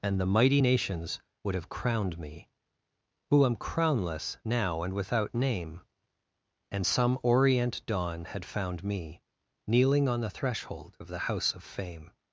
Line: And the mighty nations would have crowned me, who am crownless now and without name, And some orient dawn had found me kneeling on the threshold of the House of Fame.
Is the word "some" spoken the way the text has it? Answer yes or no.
yes